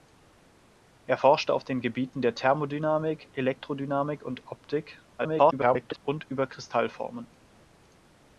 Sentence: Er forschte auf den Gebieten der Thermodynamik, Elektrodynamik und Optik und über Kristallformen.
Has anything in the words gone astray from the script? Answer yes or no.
yes